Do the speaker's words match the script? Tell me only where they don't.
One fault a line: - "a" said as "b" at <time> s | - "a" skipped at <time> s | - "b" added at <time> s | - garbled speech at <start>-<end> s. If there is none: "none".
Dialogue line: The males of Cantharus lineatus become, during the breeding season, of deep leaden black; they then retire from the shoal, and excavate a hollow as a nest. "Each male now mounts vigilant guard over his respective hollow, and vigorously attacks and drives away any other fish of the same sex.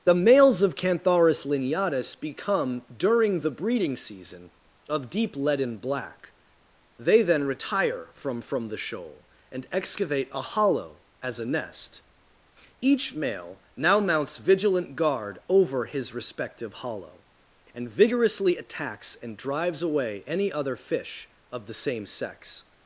- "from" added at 8.4 s